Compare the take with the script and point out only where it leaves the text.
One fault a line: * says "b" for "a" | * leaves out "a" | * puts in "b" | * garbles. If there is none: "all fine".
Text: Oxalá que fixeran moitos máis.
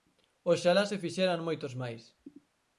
* says "se" for "que"